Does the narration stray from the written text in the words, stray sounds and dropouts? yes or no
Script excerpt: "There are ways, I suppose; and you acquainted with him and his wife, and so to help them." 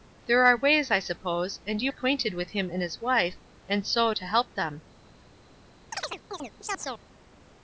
yes